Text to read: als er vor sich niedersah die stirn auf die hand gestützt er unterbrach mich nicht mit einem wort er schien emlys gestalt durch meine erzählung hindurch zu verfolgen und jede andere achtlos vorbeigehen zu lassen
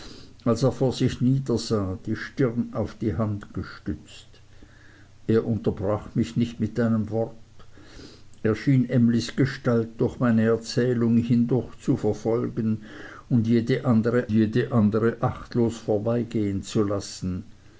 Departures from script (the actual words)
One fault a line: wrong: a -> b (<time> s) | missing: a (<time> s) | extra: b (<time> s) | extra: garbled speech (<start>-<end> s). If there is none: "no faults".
extra: jede andere (14.3 s)